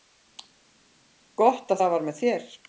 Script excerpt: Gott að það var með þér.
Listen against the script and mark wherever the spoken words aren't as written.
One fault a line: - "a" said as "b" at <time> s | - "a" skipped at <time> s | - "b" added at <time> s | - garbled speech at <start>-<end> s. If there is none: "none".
none